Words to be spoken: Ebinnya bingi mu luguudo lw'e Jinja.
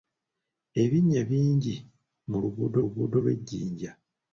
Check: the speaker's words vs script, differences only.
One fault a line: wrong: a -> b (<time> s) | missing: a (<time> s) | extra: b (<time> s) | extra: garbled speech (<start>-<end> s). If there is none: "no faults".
extra: luguudo (2.8 s)